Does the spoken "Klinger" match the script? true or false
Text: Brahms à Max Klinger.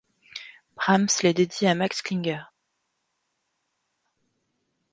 true